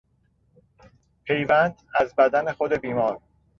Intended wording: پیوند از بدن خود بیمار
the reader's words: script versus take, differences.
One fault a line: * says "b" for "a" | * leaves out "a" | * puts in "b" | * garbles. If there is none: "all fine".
all fine